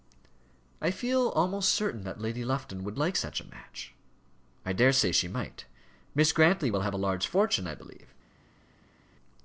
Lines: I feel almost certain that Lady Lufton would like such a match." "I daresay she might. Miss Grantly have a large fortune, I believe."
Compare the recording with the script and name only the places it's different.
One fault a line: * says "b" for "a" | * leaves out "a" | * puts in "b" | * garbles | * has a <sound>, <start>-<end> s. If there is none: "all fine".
* puts in "will"